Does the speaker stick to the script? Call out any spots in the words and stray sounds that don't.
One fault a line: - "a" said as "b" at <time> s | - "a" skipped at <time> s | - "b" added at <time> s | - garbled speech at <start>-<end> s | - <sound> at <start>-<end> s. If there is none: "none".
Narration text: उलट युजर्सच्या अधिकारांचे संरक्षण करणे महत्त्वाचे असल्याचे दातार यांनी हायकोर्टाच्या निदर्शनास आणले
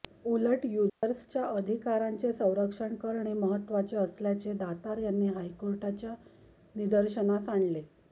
- dropout at 0.9-1.0 s